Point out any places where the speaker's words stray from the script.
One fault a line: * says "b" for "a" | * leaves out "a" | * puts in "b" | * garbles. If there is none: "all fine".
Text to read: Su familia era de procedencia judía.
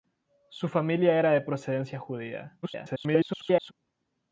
* garbles